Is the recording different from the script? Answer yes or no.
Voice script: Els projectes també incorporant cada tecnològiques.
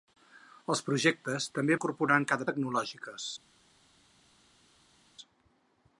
no